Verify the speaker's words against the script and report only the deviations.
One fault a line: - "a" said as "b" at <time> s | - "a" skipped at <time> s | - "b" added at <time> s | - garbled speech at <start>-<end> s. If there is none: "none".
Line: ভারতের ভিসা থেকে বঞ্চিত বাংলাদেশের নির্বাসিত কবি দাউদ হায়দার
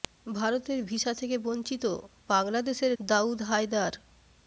- "নির্বাসিত কবি" skipped at 2.9 s